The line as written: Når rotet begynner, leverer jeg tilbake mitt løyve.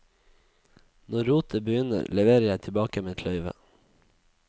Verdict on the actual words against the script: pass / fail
pass